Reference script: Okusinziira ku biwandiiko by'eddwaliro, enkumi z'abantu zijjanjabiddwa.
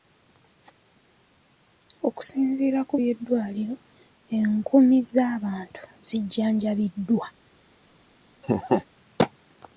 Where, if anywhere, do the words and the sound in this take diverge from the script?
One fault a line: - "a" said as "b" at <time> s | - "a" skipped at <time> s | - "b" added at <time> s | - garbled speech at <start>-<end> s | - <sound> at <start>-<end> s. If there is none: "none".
- "biwandiiko" skipped at 2.9 s
- laugh at 8.4-8.8 s